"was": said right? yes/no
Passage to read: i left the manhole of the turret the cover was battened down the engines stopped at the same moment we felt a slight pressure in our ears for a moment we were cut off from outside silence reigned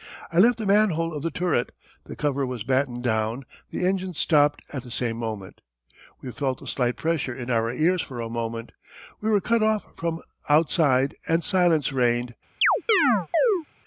yes